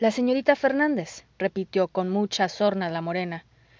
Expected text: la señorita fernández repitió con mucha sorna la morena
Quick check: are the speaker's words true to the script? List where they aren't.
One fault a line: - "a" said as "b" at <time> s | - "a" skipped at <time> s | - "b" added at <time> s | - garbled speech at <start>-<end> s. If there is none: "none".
none